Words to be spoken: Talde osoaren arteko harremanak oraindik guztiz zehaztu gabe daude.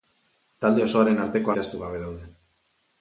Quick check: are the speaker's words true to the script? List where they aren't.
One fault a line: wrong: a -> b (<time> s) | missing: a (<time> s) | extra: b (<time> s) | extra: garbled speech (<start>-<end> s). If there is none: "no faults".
missing: harremanak oraindik guztiz (1.5 s)